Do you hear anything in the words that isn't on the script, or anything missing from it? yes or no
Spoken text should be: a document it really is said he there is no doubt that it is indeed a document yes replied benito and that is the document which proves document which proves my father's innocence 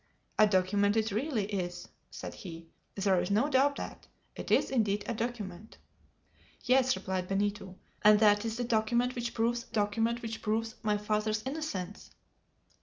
no